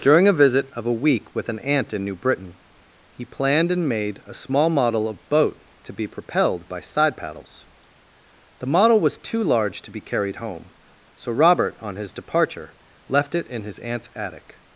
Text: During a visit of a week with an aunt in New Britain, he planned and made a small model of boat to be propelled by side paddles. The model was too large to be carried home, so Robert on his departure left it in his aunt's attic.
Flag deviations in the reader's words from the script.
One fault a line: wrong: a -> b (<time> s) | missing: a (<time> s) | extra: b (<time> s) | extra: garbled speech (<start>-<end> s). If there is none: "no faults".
no faults